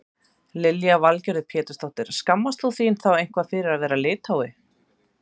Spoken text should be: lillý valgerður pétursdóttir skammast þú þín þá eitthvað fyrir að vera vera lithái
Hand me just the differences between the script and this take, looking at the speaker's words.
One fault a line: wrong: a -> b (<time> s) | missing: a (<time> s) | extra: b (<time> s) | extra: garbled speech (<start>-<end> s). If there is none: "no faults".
missing: vera (4.0 s)